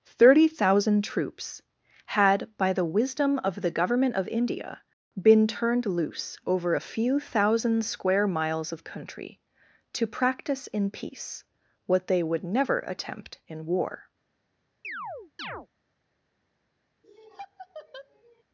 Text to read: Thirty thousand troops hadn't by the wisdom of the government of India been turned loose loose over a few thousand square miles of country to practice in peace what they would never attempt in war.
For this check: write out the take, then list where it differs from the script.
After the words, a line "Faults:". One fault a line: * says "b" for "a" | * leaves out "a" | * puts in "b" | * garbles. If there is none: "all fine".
Thirty thousand troops had by the wisdom of the government of India been turned loose over a few thousand square miles of country to practice in peace what they would never attempt in war.
Faults:
* says "had" for "hadn't"
* leaves out "loose"